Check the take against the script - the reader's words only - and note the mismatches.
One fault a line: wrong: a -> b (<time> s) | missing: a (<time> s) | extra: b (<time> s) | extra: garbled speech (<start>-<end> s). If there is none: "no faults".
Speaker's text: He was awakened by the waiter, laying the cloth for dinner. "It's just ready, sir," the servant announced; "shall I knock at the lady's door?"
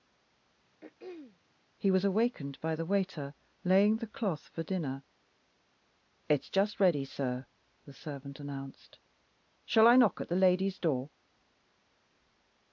no faults